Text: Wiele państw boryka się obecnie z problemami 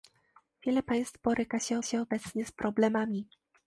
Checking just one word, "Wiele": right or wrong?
right